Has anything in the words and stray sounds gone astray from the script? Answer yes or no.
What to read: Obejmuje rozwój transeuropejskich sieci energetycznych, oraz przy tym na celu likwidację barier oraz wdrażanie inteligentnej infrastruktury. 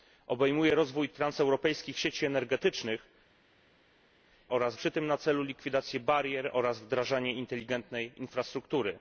no